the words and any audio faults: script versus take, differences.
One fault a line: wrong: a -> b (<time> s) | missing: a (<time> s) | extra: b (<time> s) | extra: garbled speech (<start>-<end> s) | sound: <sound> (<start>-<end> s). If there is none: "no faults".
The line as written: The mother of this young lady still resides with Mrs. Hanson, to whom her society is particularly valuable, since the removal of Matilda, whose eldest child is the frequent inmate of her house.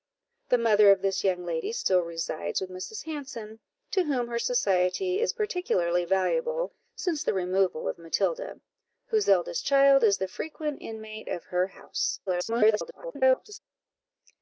extra: garbled speech (12.3-13.6 s)